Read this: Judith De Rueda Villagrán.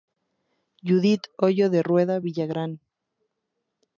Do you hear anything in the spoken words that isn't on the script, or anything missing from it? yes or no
yes